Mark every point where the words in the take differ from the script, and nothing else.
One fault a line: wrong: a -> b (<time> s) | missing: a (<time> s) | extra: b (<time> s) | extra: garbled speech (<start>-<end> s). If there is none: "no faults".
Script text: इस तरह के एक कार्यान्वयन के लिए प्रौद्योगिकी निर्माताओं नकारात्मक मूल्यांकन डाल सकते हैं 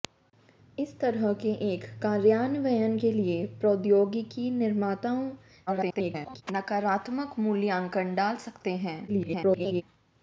extra: garbled speech (5.7-6.4 s)
extra: garbled speech (9.1-9.8 s)